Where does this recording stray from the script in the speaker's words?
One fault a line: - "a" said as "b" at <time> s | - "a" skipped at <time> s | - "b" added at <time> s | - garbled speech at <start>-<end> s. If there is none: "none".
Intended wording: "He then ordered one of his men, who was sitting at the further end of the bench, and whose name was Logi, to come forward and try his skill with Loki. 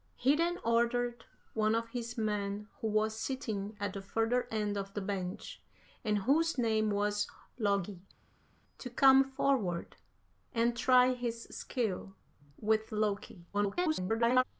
- garbled speech at 13.5-14.4 s